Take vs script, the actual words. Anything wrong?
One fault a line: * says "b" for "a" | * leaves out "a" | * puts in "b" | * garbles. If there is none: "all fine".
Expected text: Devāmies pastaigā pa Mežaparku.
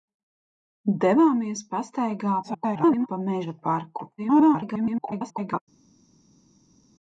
* garbles
* garbles